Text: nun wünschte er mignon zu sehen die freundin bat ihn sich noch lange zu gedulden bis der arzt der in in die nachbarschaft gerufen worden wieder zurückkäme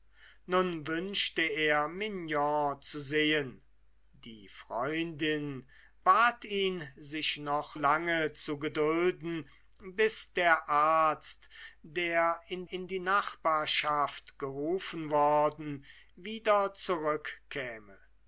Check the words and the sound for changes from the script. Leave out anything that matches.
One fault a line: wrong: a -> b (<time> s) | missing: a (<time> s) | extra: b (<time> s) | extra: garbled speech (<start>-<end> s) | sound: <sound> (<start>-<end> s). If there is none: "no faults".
no faults